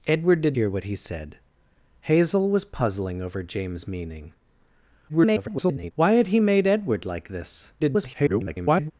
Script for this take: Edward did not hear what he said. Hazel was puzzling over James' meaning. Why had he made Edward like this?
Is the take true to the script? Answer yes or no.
no